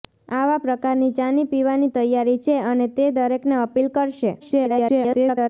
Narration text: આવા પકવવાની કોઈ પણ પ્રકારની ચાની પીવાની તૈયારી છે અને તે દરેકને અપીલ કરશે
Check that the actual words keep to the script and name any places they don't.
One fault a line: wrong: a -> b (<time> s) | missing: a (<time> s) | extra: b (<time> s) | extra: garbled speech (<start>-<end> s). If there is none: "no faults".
missing: પકવવાની કોઈ પણ (0.6 s)
extra: garbled speech (4.4-5.5 s)